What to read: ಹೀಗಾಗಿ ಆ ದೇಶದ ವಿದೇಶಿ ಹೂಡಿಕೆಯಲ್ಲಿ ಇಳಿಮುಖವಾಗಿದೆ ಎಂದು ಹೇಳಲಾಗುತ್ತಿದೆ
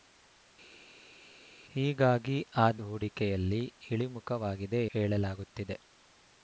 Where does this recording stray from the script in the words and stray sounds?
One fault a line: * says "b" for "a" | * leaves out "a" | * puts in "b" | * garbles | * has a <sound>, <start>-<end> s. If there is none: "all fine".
* leaves out "ದೇಶದ ವಿದೇಶಿ"
* leaves out "ಎಂದು"